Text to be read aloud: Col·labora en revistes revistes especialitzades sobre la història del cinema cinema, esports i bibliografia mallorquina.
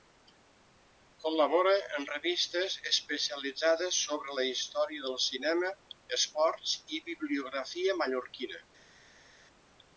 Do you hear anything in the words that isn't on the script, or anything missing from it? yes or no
yes